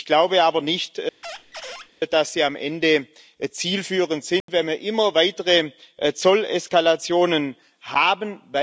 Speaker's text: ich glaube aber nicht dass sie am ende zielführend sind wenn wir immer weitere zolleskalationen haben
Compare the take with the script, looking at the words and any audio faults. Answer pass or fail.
fail